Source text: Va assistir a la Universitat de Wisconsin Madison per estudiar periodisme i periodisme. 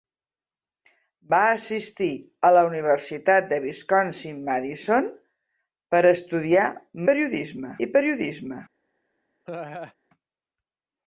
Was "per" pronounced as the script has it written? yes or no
yes